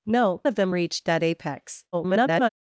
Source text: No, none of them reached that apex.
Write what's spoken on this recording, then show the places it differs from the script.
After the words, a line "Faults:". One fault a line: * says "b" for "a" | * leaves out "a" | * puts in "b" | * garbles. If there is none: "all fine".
No, of them reached that apex. [garbled]
Faults:
* leaves out "none"
* garbles